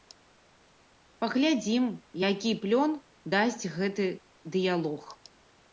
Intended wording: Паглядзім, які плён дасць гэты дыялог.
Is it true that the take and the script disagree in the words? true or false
false